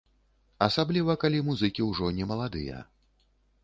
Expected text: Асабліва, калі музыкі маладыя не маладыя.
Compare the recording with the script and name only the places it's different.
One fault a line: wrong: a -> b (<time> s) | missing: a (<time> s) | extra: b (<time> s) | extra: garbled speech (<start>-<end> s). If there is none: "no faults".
wrong: маладыя -> ўжо (1.9 s)